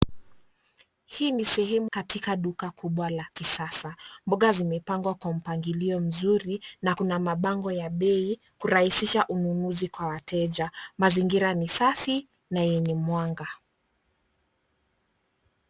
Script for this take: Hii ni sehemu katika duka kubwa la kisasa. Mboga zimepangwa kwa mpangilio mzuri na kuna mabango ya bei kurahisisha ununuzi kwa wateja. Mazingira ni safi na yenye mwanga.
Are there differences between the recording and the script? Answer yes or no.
no